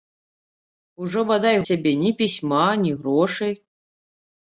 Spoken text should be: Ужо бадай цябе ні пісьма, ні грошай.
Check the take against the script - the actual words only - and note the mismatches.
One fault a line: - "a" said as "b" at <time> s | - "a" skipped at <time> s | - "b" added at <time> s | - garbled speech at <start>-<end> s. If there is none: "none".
none